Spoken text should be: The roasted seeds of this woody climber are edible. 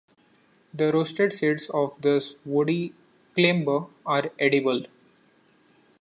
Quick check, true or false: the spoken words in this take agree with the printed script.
true